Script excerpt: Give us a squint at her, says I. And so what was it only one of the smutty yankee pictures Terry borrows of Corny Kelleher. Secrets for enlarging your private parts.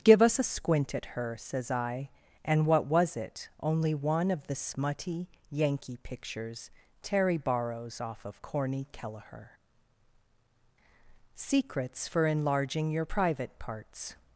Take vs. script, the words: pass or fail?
fail